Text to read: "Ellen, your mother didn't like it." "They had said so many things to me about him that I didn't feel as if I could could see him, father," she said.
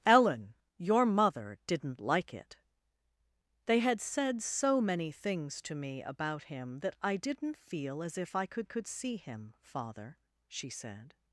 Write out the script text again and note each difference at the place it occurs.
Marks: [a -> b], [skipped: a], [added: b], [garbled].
"Ellen, your mother didn't like it." "They had said so many things to me about him that I didn't feel as if I could could see him, father," she said.